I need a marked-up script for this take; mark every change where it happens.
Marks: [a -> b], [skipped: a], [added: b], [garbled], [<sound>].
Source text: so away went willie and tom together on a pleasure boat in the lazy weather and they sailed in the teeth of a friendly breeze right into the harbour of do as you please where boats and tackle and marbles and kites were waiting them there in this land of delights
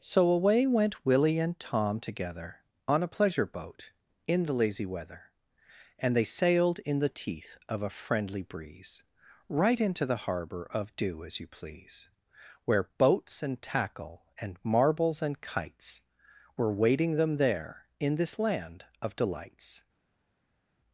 so away went willie and tom together on a pleasure boat in the lazy weather and they sailed in the teeth of a friendly breeze right into the harbour of do as you please where boats and tackle and marbles and kites were waiting them there in this land of delights